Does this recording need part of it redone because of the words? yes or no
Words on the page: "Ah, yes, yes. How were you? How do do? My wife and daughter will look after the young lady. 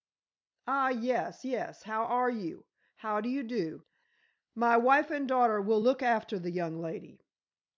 yes